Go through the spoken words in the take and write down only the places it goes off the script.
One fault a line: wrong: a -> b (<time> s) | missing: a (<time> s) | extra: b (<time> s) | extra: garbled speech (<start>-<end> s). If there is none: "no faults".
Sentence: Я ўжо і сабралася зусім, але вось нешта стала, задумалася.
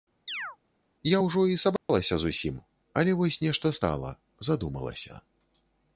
no faults